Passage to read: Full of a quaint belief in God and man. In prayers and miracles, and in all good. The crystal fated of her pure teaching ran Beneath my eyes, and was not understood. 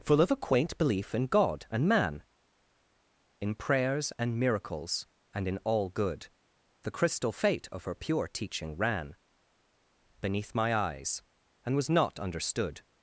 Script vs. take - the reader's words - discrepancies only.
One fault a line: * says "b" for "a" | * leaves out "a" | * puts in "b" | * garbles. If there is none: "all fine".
* says "fate" for "fated"